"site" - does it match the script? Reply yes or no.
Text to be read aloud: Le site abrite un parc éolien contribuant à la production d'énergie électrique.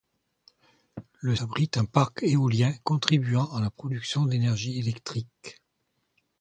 no